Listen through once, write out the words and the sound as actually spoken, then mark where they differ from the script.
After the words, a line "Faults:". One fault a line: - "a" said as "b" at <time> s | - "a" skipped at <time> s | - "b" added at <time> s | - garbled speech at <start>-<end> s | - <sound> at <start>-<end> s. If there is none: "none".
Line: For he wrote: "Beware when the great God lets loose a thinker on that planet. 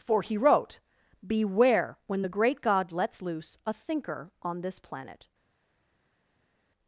For he wrote: "Beware when the great God lets loose a thinker on this planet.
Faults:
- "that" said as "this" at 4.6 s